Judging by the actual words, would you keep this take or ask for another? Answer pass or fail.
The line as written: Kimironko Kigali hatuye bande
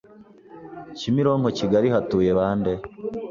pass